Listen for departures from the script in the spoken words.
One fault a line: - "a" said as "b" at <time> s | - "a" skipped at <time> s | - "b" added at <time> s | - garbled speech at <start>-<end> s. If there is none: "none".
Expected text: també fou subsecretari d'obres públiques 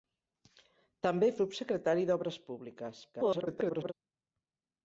- "fou" skipped at 1.3 s
- garbled speech at 3.1-3.9 s